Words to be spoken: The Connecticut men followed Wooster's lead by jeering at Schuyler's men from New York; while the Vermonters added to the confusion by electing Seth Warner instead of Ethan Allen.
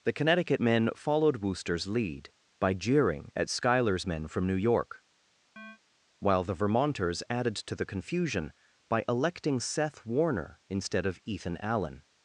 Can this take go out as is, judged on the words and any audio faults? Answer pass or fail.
fail